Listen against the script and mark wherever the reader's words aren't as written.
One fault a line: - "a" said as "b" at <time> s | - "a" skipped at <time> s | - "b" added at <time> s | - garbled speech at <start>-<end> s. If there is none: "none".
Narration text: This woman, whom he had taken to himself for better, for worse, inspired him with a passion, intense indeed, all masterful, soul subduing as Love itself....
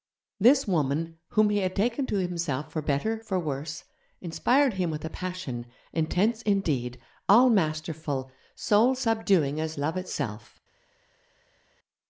none